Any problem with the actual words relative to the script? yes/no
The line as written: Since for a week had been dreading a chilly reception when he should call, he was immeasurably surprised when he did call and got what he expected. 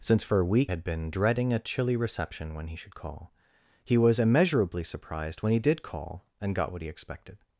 no